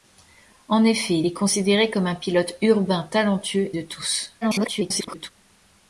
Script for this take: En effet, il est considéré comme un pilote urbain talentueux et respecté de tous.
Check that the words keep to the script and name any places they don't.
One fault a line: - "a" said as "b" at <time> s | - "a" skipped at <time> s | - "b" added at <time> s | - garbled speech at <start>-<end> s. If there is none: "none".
- "et respecté" skipped at 3.7 s
- garbled speech at 4.4-5.3 s